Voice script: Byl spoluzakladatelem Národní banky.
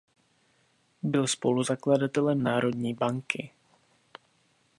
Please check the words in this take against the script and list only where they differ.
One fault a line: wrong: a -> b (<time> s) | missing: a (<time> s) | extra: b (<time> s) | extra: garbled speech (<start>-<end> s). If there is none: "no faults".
no faults